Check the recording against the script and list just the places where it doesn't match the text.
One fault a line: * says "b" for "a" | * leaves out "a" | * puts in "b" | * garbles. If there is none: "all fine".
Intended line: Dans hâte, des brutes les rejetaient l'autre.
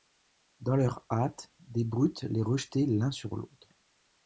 * puts in "leur"
* puts in "l'un sur"